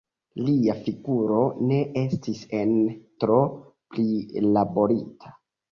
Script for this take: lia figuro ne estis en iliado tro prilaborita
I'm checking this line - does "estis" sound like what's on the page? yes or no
yes